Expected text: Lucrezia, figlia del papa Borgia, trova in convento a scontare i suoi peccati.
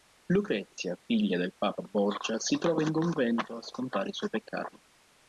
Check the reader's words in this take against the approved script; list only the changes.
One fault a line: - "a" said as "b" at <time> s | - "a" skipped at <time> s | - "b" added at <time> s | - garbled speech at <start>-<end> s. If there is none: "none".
- "si" added at 2.4 s